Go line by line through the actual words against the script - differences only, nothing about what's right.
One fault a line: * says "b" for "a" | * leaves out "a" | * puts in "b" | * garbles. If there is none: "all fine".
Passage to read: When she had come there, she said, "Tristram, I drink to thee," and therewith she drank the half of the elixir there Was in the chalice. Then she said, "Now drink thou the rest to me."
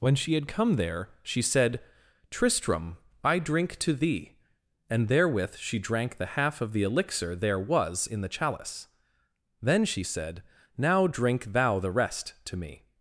all fine